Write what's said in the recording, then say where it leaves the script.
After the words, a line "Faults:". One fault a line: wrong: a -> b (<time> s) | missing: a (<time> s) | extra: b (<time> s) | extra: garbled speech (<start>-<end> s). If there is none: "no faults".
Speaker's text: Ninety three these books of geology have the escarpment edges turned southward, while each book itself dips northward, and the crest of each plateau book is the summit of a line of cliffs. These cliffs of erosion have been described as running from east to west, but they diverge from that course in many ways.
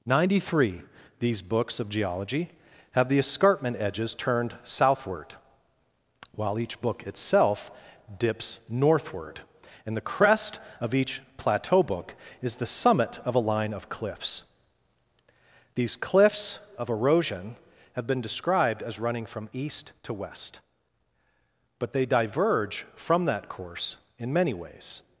Ninety three these books of geology have the escarpment edges turned southward, while each book itself dips northward, and the crest of each plateau book is the summit of a line of cliffs. These cliffs of erosion have been described as running from east to west, but they diverge from that course in many ways.
Faults:
no faults